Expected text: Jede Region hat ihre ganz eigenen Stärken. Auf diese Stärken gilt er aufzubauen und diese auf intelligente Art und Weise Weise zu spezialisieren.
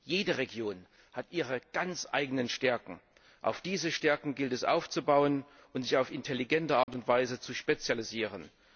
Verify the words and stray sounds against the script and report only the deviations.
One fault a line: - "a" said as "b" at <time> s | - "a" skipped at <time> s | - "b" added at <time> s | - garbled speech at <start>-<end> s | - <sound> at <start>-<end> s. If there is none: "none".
- "er" said as "es" at 4.5 s
- "diese" said as "sich" at 5.8 s
- dropout at 6.8-6.9 s
- "Weise" skipped at 7.4 s